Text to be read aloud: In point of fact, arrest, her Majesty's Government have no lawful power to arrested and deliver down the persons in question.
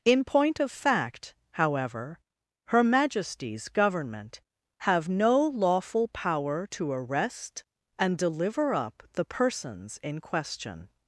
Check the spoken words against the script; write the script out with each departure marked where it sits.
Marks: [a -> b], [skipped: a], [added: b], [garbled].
In point of fact, [arrest, -> however] her Majesty's Government have no lawful power to [arrested -> arrest] and deliver [down -> up] the persons in question.